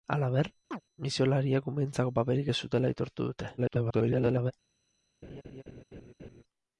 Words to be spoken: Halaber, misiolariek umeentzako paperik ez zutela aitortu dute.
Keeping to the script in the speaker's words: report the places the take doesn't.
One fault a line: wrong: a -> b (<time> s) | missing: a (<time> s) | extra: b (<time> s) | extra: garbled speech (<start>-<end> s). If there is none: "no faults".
extra: garbled speech (3.6-4.5 s)